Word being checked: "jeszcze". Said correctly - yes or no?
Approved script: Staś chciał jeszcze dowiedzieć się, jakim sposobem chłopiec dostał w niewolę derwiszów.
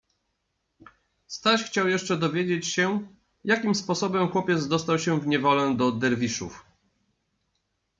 yes